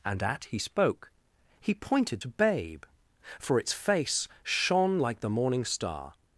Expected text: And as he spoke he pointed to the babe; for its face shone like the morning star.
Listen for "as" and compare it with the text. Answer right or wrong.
wrong